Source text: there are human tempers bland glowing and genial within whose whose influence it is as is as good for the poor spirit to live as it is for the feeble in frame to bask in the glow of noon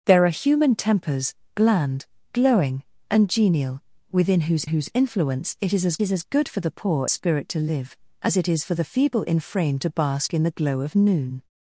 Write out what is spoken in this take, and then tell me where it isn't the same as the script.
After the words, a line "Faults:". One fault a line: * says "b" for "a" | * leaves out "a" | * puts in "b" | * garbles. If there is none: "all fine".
there are human tempers bland glowing and genial within whose whose influence it is as is as good for the poor spirit to live as it is for the feeble in frame to bask in the glow of noon
Faults:
all fine